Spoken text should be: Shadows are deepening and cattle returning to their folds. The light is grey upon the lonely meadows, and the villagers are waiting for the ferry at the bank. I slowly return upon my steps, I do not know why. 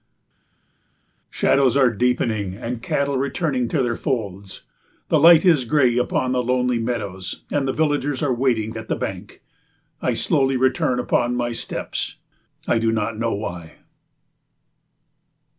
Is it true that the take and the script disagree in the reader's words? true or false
true